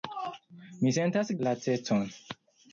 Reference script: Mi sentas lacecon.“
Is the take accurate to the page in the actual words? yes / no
yes